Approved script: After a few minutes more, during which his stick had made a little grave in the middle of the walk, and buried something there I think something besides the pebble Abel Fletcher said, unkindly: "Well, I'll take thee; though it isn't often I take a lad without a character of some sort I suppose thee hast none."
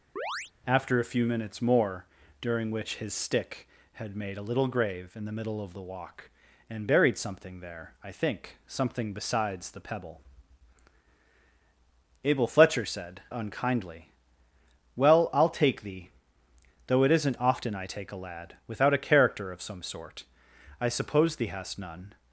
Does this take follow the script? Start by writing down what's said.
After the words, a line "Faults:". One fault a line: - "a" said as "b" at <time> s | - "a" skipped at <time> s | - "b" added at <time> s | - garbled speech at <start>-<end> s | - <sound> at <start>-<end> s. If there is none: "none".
After a few minutes more, during which his stick had made a little grave in the middle of the walk, and buried something there I think something besides the pebble Abel Fletcher said, unkindly: "Well, I'll take thee; though it isn't often I take a lad without a character of some sort I suppose thee hast none."
Faults:
- chirp at 0.2-0.5 s